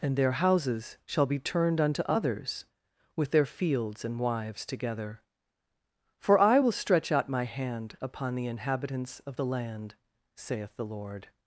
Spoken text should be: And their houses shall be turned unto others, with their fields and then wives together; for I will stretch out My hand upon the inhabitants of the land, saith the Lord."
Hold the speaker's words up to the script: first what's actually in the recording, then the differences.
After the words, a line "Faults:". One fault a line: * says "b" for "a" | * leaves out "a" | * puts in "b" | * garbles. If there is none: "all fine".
And their houses shall be turned unto others, with their fields and wives together; for I will stretch out My hand upon the inhabitants of the land, saith the Lord."
Faults:
* leaves out "then"